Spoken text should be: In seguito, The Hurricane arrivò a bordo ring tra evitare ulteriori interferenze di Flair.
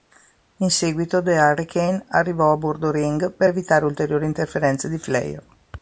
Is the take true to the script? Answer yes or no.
no